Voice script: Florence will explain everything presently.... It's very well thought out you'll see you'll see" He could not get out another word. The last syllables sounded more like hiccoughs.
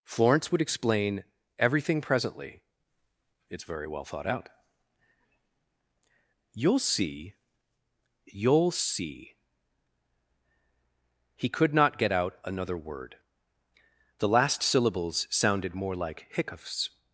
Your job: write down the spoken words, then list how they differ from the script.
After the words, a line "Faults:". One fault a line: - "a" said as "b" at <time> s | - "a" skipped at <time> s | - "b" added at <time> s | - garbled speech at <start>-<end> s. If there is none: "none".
Florence would explain everything presently.... It's very well thought out you'll see you'll see" He could not get out another word. The last syllables sounded more like hiccoughs.
Faults:
- "will" said as "would" at 0.5 s